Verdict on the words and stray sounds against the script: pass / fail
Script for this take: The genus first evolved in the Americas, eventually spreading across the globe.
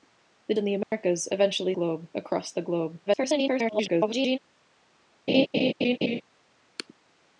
fail